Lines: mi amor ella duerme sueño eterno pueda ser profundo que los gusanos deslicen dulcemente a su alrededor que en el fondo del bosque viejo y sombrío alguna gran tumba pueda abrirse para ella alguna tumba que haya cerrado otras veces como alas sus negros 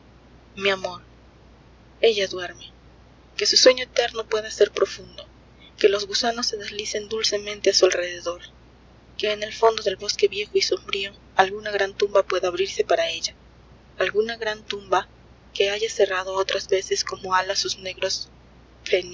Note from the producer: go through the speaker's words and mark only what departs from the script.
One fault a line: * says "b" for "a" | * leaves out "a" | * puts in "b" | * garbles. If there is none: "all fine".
* puts in "que su"
* puts in "se"
* puts in "gran"